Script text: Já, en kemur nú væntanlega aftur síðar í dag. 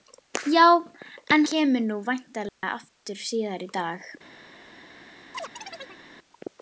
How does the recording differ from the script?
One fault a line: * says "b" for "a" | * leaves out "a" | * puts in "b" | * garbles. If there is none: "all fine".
all fine